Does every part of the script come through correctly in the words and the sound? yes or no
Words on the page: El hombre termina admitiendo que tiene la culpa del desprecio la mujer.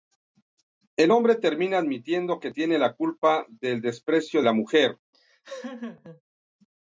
no